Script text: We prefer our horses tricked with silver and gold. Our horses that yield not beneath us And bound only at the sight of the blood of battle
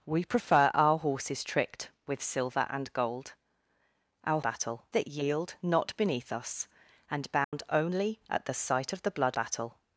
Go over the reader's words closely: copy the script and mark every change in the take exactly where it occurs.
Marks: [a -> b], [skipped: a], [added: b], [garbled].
We prefer our horses tricked with silver and gold. Our [horses -> battle] that yield not beneath us And bound only at the sight of the blood [skipped: of] battle